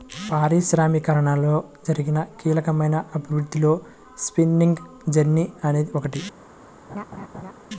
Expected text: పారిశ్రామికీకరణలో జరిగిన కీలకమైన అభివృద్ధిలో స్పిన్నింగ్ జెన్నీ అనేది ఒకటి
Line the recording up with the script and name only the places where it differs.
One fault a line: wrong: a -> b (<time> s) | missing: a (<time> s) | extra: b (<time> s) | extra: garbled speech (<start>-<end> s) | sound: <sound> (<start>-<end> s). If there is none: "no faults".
sound: laugh (6.9-7.5 s)